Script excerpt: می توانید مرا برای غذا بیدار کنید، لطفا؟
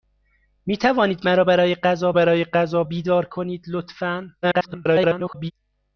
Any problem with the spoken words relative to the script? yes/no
yes